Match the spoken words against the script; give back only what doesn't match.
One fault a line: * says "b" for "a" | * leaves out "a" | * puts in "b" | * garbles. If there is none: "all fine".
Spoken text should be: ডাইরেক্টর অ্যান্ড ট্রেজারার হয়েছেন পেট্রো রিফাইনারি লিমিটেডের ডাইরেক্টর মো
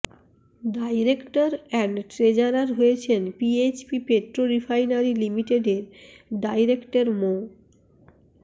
* puts in "পিএইচপি"